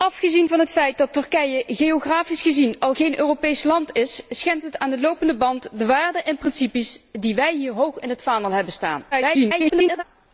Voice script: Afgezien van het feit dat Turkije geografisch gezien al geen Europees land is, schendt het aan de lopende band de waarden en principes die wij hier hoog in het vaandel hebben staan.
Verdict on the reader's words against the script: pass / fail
fail